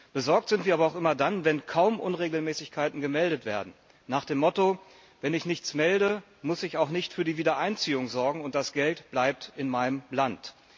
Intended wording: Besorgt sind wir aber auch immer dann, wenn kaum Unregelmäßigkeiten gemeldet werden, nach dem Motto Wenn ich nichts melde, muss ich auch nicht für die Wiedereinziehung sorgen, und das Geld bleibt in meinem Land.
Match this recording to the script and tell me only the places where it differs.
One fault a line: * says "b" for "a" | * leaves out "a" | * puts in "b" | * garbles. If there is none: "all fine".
all fine